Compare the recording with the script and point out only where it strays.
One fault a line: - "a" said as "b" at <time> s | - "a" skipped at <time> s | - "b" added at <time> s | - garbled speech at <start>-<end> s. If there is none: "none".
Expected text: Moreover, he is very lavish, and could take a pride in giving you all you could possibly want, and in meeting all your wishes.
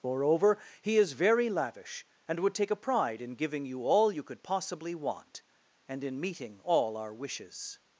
- "could" said as "would" at 2.4 s
- "your" said as "our" at 7.0 s